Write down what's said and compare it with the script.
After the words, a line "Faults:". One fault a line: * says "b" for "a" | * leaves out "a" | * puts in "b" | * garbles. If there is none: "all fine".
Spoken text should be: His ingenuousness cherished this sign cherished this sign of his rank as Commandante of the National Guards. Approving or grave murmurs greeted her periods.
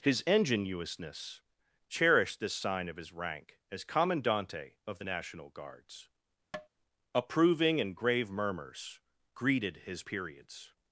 His ingenuousness cherished this sign of his rank as Commandante of the National Guards. Approving and grave murmurs greeted his periods.
Faults:
* leaves out "cherished this sign"
* says "and" for "or"
* says "his" for "her"